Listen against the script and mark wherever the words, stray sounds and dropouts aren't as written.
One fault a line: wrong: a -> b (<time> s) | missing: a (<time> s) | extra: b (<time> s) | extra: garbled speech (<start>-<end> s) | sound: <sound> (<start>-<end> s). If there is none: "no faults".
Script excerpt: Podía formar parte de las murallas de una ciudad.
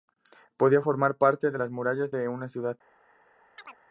sound: chirp (3.6-3.8 s)